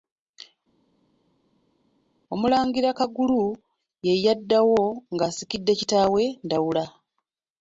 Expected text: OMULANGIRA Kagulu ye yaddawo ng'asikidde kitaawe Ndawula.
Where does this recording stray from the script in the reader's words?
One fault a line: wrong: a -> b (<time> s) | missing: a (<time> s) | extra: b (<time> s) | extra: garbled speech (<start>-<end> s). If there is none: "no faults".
no faults